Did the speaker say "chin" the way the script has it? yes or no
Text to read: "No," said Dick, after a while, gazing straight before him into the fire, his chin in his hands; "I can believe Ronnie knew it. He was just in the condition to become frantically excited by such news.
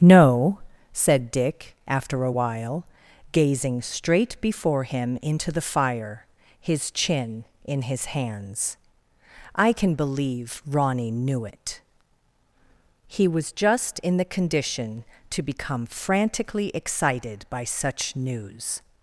yes